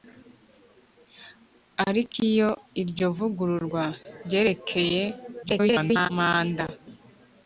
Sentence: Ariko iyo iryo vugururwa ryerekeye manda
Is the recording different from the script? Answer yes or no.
yes